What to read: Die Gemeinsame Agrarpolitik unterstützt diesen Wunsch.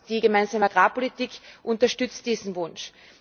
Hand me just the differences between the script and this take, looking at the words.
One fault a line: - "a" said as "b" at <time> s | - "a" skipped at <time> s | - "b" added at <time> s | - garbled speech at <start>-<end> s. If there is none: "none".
none